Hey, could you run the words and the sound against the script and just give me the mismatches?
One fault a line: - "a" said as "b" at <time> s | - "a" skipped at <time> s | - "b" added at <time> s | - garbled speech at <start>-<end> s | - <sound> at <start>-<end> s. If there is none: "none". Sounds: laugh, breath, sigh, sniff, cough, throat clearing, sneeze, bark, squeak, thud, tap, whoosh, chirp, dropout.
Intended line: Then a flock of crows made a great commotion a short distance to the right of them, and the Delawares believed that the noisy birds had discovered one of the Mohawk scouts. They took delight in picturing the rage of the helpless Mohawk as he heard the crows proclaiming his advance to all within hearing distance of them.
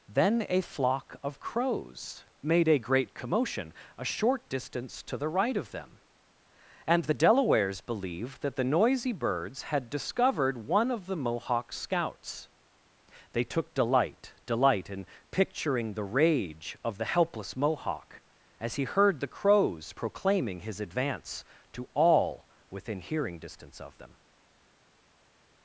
- "delight" added at 14.4 s